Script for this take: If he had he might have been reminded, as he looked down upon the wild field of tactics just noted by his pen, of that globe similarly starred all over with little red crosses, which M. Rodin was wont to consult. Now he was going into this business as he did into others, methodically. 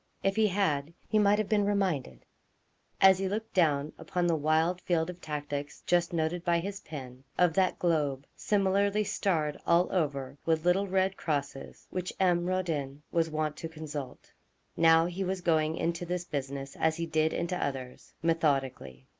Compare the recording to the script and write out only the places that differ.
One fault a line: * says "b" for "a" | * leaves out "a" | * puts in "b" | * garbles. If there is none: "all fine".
all fine